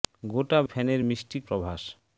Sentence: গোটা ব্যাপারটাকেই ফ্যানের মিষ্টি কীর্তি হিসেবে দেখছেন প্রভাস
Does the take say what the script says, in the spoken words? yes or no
no